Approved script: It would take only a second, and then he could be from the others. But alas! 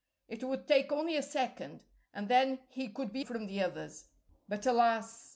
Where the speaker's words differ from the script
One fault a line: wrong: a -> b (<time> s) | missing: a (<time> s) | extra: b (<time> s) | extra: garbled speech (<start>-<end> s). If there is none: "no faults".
no faults